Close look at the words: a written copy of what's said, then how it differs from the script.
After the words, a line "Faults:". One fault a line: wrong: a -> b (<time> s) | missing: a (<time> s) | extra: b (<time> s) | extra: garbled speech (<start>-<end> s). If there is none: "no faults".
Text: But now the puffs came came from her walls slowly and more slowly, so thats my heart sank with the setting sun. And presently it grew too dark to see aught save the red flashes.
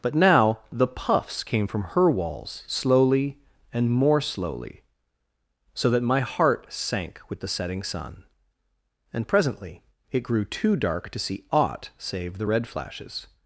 But now the puffs came from her walls slowly and more slowly, so that my heart sank with the setting sun. And presently it grew too dark to see aught save the red flashes.
Faults:
missing: came (1.7 s)
wrong: thats -> that (5.9 s)